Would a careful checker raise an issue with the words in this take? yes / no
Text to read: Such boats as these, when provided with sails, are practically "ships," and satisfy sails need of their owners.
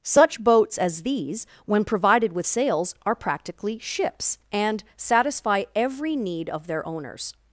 yes